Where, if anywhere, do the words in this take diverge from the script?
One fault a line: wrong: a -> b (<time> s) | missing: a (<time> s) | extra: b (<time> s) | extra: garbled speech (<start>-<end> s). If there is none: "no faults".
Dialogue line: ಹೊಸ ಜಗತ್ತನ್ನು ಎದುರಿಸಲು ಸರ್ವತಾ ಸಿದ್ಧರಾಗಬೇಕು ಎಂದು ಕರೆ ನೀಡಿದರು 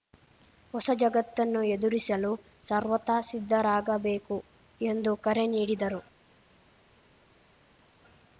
no faults